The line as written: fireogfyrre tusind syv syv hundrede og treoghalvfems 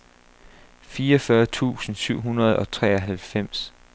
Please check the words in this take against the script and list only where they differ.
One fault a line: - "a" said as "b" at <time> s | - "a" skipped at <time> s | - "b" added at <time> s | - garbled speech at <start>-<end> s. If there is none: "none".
- "syv" skipped at 2.2 s